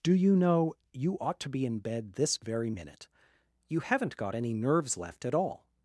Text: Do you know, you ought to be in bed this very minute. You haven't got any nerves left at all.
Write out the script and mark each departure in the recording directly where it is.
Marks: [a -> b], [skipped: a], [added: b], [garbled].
Do you know, you ought to be in bed this very minute. You haven't got any nerves left at all.